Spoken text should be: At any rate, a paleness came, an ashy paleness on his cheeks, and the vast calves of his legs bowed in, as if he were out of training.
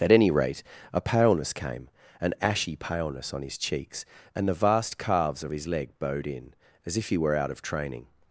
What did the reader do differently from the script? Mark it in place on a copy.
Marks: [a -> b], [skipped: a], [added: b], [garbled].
At any rate, a paleness came, an ashy paleness on his cheeks, and the vast calves of his [legs -> leg] bowed in, as if he were out of training.